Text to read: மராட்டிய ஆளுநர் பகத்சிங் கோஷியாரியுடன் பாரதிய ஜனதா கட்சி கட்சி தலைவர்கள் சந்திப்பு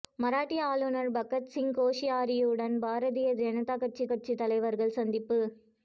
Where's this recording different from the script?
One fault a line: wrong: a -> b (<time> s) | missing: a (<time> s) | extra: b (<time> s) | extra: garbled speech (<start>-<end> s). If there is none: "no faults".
no faults